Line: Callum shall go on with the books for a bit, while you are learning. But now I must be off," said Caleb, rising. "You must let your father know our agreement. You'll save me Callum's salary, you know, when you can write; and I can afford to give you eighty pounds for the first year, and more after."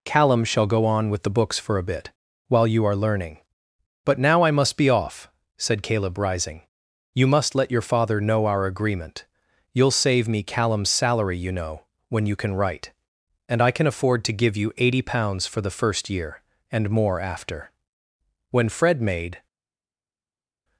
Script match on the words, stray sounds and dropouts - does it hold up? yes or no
no